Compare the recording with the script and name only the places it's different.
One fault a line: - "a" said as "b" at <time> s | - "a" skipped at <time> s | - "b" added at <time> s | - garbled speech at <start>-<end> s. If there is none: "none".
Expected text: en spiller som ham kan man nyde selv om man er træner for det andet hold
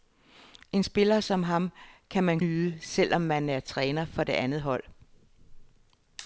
none